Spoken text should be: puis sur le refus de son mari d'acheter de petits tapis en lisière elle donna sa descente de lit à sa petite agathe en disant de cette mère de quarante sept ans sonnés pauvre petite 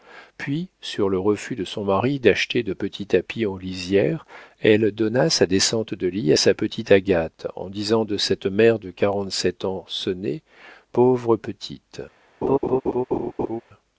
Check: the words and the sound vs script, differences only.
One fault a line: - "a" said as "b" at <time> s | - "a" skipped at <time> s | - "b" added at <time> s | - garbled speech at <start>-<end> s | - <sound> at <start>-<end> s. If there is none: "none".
- laugh at 12.4-13.6 s